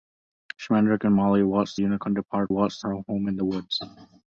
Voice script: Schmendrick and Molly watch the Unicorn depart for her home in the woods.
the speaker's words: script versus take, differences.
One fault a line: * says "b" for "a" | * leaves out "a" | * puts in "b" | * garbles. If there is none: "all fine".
* leaves out "the"
* says "watch" for "for"